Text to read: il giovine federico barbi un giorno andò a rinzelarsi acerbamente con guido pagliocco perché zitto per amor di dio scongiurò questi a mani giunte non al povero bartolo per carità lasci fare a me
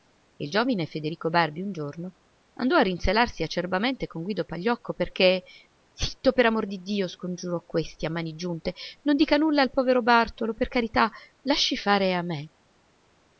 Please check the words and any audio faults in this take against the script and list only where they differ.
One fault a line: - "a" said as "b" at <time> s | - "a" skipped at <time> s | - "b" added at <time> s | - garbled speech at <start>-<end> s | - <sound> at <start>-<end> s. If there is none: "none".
- "dica nulla" added at 9.2 s